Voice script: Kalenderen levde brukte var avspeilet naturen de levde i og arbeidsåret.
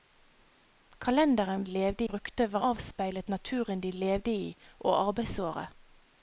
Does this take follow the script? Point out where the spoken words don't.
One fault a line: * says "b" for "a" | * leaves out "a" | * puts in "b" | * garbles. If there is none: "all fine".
all fine